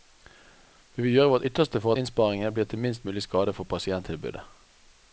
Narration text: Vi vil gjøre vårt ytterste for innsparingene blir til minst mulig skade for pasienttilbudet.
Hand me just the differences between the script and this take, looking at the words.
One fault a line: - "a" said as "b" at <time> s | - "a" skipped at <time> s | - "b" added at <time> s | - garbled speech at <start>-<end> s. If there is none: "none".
none